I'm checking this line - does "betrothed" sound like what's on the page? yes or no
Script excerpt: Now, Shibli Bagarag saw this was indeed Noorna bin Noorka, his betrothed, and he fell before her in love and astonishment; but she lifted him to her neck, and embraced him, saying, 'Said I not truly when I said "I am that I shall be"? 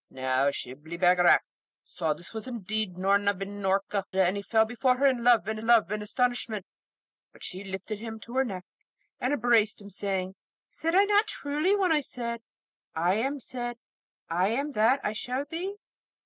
no